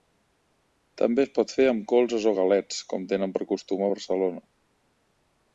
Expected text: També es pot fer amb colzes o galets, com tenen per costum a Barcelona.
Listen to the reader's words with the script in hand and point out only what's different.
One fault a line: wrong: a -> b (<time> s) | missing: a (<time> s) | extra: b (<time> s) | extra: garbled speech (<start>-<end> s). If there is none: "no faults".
no faults